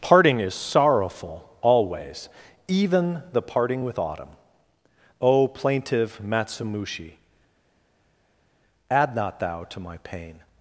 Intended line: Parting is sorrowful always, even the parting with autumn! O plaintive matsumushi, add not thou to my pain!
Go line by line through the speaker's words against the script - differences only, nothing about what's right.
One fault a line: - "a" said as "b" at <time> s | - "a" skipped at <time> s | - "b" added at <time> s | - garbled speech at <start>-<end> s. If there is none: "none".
none